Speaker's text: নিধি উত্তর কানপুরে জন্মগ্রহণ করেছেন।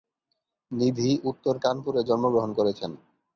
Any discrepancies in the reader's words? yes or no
no